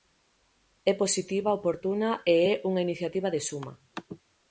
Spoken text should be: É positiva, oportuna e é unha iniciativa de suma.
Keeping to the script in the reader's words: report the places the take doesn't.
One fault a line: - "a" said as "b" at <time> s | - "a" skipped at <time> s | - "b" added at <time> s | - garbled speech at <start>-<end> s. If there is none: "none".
none